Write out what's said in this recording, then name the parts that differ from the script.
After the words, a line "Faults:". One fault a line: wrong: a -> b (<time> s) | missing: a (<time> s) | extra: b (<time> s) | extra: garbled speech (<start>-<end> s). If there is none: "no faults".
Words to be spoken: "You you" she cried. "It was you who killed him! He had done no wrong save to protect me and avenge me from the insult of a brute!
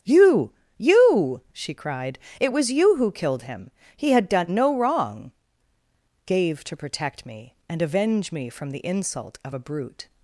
"You you" she cried. "It was you who killed him! He had done no wrong gave to protect me and avenge me from the insult of a brute!
Faults:
wrong: save -> gave (6.3 s)